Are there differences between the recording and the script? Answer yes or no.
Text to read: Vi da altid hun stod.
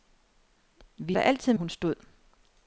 no